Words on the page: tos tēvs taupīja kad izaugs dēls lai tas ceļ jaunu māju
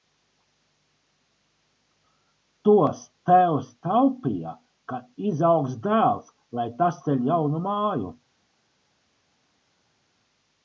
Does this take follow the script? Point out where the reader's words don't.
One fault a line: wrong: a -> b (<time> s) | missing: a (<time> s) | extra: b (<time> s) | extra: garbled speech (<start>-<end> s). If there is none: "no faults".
no faults